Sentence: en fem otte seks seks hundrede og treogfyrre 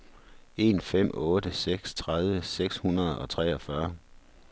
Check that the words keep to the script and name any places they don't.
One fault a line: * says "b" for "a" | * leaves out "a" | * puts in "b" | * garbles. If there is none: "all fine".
* puts in "tredive"